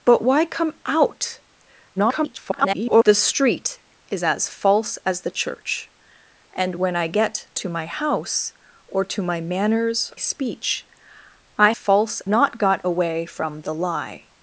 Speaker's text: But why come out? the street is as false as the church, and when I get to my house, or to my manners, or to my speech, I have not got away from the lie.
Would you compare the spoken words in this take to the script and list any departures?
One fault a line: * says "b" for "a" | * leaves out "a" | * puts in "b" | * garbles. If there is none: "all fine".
* garbles
* leaves out "or to my"
* says "false" for "have"